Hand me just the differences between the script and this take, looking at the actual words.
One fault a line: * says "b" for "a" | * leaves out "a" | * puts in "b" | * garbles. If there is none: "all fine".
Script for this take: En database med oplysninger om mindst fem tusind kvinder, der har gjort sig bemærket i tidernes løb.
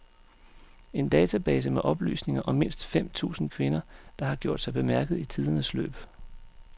all fine